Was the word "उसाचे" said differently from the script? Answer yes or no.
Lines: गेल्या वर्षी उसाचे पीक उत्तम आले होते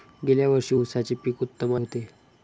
no